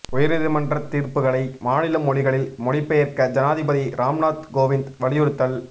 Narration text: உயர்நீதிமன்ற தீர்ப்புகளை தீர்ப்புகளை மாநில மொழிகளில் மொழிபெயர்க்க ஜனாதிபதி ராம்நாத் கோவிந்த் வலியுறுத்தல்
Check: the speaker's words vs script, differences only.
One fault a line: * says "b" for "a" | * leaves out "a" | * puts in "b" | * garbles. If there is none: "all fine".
* leaves out "தீர்ப்புகளை"